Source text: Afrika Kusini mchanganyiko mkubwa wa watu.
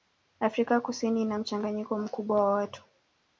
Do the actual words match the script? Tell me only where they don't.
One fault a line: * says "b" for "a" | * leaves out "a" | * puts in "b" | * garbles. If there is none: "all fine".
* puts in "ina"